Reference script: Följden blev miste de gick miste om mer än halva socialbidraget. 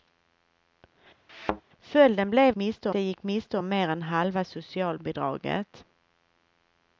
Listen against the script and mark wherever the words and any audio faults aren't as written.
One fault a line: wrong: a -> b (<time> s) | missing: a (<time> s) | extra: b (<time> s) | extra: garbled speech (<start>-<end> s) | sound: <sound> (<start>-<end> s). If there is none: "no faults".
sound: thud (1.3-1.6 s)